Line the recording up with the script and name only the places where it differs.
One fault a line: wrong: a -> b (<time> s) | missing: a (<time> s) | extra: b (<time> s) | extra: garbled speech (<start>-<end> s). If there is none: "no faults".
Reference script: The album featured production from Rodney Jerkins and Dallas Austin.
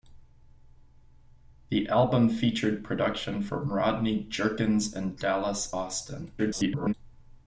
extra: garbled speech (6.4-6.9 s)